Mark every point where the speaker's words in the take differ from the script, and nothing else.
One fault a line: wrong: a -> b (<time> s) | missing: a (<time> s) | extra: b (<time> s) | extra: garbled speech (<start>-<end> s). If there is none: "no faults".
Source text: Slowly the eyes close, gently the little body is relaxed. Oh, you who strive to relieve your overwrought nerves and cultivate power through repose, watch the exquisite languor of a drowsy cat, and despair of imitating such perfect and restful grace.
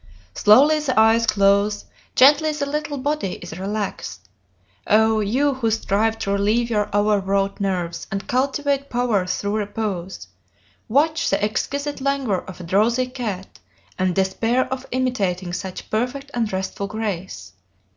no faults